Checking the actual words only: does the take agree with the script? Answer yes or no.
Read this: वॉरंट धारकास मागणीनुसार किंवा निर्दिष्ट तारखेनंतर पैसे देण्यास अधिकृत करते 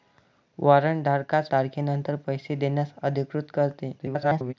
no